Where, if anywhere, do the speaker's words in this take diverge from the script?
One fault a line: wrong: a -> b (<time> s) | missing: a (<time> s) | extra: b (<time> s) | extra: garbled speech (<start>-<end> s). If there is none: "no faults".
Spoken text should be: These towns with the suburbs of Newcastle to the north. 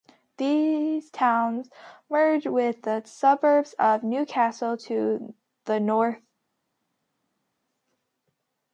extra: merge (2.1 s)